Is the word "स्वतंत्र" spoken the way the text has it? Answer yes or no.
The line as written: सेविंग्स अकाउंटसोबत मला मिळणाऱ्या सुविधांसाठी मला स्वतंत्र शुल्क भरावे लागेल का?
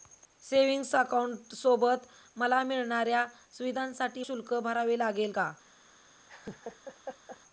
no